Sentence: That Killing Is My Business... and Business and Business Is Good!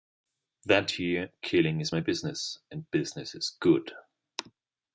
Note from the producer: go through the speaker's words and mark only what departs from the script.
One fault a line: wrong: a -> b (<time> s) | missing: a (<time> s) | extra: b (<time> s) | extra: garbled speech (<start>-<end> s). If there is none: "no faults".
extra: year (1.0 s)
missing: and Business (3.3 s)